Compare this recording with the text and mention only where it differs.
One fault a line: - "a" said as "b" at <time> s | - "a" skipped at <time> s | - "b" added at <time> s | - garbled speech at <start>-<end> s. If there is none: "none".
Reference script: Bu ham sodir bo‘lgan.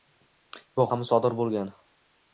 none